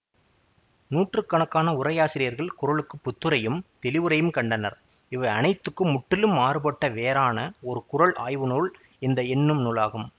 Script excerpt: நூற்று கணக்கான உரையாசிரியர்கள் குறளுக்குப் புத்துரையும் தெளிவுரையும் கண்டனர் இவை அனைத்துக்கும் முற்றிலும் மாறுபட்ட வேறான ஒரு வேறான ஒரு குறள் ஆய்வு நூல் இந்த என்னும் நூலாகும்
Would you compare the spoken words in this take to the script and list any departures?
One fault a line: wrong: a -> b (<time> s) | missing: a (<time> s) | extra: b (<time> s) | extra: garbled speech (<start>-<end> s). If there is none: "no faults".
missing: வேறான ஒரு (7.8 s)